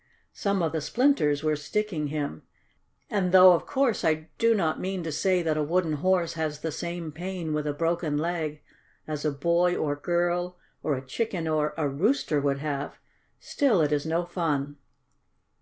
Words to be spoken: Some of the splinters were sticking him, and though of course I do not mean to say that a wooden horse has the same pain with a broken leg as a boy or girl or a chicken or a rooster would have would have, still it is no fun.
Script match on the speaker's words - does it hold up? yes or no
no